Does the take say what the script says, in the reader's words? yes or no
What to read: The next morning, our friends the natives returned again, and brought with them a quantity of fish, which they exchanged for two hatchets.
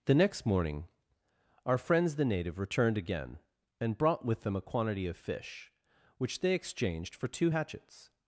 no